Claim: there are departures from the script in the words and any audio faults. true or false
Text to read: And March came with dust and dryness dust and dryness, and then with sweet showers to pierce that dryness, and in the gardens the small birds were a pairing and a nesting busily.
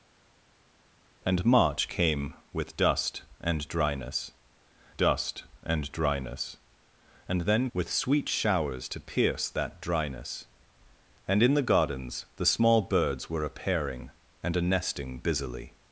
false